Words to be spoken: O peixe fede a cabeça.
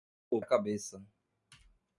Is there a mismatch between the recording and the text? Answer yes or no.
yes